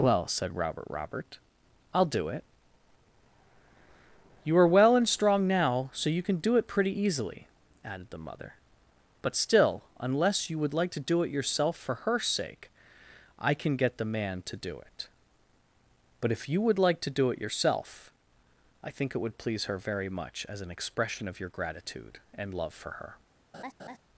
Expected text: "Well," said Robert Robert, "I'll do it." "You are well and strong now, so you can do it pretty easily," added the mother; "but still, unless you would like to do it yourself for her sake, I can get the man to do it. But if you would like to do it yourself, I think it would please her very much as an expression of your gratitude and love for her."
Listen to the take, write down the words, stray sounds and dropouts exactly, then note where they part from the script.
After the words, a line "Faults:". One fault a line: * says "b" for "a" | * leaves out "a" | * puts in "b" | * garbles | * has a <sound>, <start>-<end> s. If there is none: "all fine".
"Well," said Robert Robert, "I'll do it." "You are well and strong now, so you can do it pretty easily," added the mother; "but still, unless you would like to do it yourself for her sake, I can get the man to do it. But if you would like to do it yourself, I think it would please her very much as an expression of your gratitude and love for her."
Faults:
* has a laugh, 23.5-24.0 s